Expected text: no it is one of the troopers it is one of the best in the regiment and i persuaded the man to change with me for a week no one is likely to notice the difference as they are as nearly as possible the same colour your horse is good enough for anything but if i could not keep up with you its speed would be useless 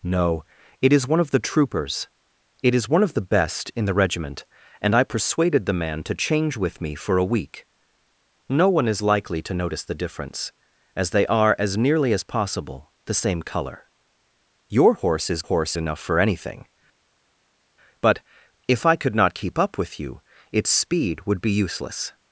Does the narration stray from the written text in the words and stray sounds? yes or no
yes